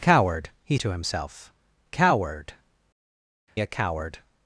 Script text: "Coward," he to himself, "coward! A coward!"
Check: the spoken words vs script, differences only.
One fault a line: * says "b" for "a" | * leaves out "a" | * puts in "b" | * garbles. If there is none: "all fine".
all fine